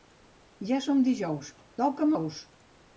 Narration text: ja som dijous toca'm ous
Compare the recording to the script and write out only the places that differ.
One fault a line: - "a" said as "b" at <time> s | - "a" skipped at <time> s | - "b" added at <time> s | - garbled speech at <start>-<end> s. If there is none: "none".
none